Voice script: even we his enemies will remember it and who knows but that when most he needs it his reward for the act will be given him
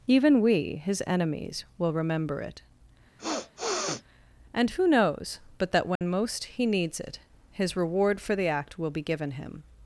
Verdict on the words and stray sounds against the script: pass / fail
fail